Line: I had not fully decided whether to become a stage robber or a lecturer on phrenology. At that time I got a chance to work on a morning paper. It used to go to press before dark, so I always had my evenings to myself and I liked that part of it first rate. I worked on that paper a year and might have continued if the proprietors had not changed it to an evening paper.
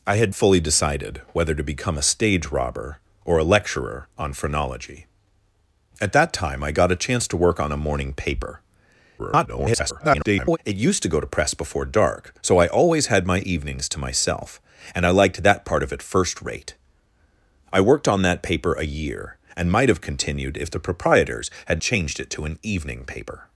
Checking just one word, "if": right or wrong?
right